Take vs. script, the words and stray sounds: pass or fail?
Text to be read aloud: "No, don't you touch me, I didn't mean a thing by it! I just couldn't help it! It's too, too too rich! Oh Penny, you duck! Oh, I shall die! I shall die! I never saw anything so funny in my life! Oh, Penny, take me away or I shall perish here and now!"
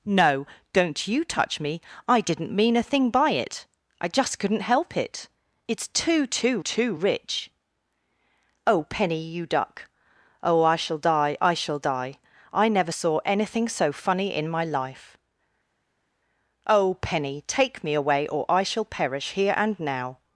pass